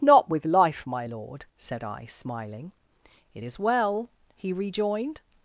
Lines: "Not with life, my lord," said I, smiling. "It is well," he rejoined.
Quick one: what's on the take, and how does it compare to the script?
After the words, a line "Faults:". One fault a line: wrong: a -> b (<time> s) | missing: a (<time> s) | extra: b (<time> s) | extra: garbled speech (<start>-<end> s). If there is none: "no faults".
"Not with life, my lord," said I, smiling. "It is well," he rejoined.
Faults:
no faults